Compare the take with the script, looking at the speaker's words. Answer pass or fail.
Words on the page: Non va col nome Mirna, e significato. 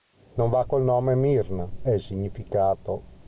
pass